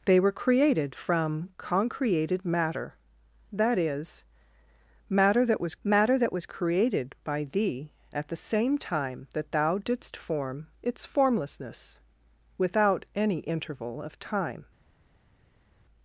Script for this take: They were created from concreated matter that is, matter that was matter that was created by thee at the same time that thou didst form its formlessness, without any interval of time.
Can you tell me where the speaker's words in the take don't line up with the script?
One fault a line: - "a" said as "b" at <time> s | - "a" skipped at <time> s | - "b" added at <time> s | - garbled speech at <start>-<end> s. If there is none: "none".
none